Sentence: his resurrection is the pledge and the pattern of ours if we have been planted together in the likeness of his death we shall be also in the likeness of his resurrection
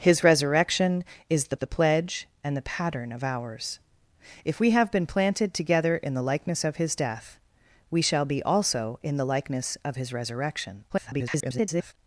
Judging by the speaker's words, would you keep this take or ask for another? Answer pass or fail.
fail